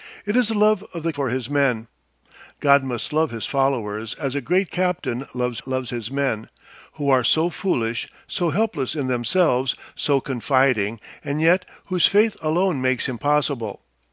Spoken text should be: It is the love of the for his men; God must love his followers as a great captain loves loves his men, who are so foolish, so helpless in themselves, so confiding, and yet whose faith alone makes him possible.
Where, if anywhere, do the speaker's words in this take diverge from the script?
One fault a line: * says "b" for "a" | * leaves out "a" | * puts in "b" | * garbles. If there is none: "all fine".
all fine